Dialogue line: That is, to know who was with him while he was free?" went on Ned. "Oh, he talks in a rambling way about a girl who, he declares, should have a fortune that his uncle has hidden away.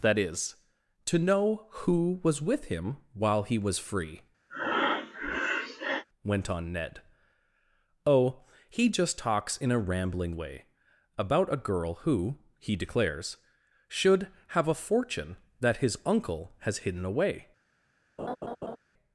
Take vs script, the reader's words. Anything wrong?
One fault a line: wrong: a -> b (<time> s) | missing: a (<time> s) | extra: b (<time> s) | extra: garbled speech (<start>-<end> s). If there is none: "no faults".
extra: just (8.9 s)